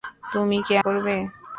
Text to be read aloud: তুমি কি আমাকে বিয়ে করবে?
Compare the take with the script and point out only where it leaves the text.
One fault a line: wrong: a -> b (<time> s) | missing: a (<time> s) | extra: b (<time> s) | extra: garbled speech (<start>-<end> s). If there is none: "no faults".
missing: আমাকে বিয়ে (0.7 s)